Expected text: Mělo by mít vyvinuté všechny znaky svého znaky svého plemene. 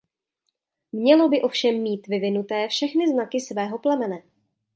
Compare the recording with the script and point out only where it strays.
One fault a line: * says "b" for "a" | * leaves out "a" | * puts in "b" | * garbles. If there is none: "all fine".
* puts in "ovšem"
* leaves out "znaky svého"